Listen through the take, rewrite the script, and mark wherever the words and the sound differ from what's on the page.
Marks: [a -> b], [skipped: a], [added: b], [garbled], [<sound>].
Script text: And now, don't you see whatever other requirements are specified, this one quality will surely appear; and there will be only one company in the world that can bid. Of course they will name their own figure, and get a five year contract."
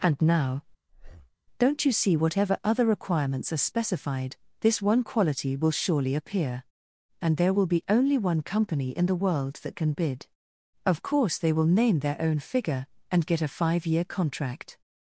And now, [breath] don't you see whatever other requirements are specified, this one quality will surely appear; and there will be only one company in the world that can bid. Of course they will name their own figure, and get a five year contract."